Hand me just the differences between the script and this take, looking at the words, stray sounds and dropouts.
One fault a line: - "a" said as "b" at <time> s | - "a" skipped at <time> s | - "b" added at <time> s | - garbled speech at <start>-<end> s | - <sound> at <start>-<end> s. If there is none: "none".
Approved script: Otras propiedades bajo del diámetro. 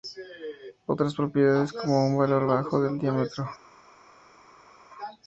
- "como un valor" added at 1.7 s